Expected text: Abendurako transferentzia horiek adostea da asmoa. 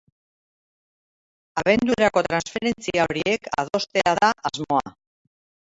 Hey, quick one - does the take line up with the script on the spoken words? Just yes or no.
yes